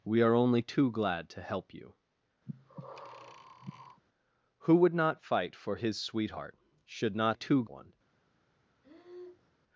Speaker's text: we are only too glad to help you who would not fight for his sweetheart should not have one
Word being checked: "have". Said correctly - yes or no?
no